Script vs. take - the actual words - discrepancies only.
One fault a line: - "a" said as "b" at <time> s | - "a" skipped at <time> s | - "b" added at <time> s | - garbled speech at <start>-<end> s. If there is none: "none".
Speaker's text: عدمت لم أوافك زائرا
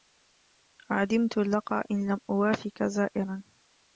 - "اللقا إن" added at 1.4 s